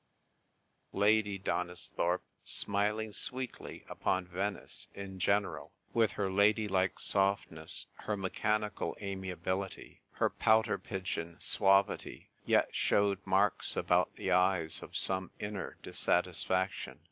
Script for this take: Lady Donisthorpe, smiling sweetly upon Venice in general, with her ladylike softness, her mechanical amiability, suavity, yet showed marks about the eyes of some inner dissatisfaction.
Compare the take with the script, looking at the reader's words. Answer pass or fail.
fail